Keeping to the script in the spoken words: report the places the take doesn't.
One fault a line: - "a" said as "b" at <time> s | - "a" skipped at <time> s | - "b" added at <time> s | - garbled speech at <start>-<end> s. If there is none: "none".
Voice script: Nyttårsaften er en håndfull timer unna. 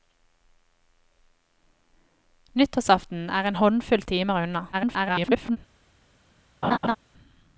- garbled speech at 4.7-5.6 s